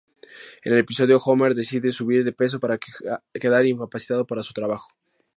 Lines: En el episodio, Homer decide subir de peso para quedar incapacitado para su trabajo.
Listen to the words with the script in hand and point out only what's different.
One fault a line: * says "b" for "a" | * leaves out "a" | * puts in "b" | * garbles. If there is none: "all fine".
all fine